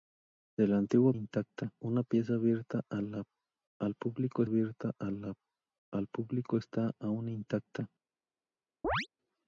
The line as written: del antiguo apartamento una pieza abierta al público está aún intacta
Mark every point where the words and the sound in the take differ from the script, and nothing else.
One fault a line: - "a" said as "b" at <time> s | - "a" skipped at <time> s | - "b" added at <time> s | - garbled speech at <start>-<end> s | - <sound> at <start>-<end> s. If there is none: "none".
- "apartamento" said as "intacta" at 1.1 s
- "abierta al público" added at 4.4 s
- chirp at 8.8-9.1 s